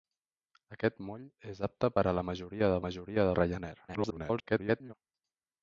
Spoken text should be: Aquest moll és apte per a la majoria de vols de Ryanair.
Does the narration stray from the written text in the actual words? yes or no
yes